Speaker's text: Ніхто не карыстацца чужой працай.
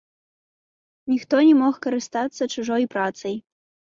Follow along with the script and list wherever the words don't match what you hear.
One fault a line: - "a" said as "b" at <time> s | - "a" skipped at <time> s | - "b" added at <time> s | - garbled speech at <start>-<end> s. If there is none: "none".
- "мог" added at 1.6 s